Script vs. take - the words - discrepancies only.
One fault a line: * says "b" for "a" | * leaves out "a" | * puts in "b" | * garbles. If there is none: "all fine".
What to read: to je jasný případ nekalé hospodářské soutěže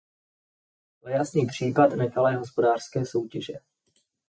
all fine